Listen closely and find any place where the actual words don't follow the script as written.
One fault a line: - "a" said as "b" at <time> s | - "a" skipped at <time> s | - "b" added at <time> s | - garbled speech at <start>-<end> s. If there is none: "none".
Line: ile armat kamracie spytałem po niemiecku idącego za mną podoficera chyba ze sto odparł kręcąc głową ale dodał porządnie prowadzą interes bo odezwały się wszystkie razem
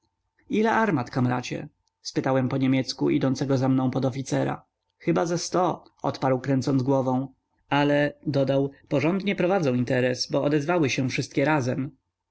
none